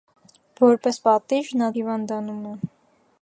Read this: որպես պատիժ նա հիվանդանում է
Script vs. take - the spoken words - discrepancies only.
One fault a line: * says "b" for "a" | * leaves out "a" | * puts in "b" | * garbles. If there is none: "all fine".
all fine